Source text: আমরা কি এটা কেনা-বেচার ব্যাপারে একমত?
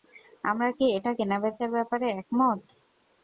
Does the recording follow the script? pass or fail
pass